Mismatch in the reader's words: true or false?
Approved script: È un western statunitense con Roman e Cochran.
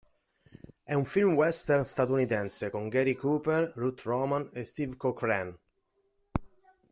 true